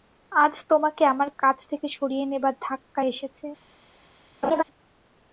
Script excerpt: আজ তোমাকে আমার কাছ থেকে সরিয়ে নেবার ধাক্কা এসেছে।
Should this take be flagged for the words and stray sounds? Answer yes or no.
yes